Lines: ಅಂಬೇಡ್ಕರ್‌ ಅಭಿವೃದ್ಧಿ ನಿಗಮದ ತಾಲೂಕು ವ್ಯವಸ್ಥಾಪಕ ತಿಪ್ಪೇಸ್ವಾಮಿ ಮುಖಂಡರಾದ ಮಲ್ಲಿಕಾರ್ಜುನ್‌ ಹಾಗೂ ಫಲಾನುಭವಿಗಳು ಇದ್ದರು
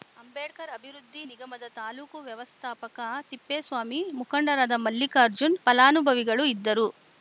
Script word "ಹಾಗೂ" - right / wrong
wrong